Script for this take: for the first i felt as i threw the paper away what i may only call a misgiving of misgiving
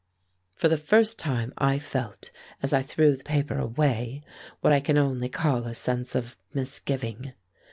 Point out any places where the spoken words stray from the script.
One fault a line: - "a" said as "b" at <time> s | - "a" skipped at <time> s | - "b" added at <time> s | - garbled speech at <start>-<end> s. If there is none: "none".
- "time" added at 1.2 s
- "may" said as "can" at 4.8 s
- "misgiving" said as "sense" at 5.7 s